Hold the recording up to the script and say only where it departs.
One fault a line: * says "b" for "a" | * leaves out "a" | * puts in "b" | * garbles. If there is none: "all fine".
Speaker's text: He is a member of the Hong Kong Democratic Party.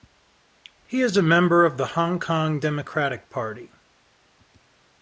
all fine